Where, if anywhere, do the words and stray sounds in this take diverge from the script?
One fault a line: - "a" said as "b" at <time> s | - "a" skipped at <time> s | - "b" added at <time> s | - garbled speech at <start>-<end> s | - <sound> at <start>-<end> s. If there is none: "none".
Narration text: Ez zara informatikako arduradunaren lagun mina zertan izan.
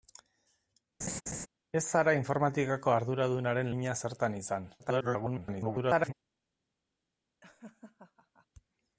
- laugh at 1.0-1.5 s
- "lagun" skipped at 3.7 s
- garbled speech at 4.8-6.1 s
- laugh at 7.4-8.5 s